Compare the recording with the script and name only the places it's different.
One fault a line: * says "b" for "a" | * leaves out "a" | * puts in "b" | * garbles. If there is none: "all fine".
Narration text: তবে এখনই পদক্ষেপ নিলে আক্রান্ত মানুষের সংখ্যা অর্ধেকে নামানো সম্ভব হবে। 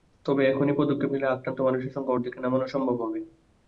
all fine